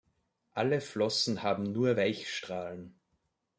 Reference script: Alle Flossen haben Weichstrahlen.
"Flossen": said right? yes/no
yes